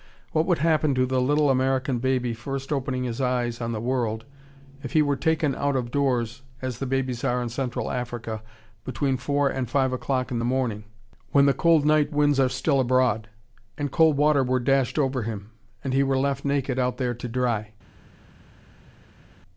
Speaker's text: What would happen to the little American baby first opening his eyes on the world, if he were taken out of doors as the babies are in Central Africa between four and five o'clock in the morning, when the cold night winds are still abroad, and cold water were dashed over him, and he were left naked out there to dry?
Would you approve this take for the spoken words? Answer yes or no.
yes